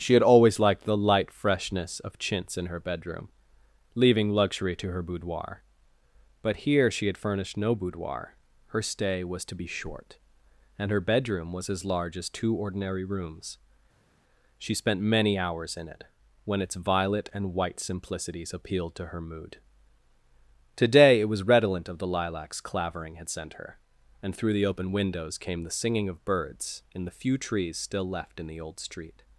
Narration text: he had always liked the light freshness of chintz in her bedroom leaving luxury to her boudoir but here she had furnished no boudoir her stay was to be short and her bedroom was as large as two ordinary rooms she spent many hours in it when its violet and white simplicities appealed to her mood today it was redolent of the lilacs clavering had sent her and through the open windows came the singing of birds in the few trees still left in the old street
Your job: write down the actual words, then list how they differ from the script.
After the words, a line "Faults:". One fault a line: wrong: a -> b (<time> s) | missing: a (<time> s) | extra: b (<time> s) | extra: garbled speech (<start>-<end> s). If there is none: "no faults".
she had always liked the light freshness of chintz in her bedroom leaving luxury to her boudoir but here she had furnished no boudoir her stay was to be short and her bedroom was as large as two ordinary rooms she spent many hours in it when its violet and white simplicities appealed to her mood today it was redolent of the lilacs clavering had sent her and through the open windows came the singing of birds in the few trees still left in the old street
Faults:
wrong: he -> she (0.0 s)